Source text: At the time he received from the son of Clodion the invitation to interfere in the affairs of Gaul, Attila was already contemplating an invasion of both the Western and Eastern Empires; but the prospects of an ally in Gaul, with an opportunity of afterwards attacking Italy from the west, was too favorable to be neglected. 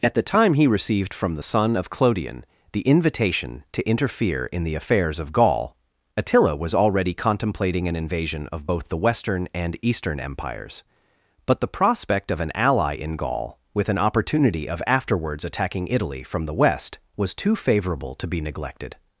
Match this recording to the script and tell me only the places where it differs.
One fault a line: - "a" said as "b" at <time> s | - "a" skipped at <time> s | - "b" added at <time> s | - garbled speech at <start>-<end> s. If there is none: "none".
- "prospects" said as "prospect" at 11.7 s